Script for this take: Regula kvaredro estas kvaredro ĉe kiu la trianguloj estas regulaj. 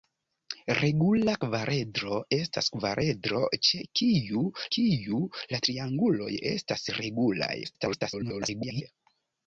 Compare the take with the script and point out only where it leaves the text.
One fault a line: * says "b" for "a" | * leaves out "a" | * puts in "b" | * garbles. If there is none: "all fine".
* puts in "kiu"
* garbles